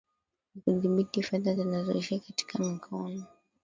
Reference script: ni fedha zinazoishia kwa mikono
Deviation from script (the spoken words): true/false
true